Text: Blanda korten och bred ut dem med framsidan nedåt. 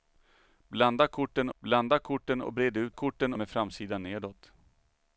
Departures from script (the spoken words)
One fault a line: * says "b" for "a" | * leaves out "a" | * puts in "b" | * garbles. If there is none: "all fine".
* puts in "blanda korten"
* says "korten" for "dem"